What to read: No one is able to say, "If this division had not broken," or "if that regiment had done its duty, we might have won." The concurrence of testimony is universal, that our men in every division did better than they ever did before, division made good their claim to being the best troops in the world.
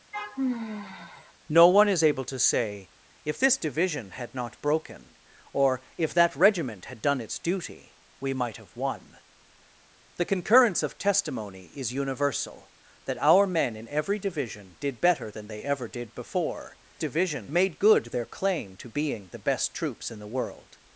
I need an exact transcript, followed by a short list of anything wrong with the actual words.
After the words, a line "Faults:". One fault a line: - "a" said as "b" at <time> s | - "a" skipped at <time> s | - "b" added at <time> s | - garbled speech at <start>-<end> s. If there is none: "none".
No one is able to say, "If this division had not broken," or "if that regiment had done its duty, we might have won." The concurrence of testimony is universal, that our men in every division did better than they ever did before, division made good their claim to being the best troops in the world.
Faults:
none